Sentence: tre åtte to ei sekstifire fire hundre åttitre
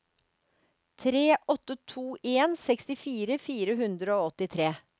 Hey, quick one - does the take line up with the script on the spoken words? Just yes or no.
no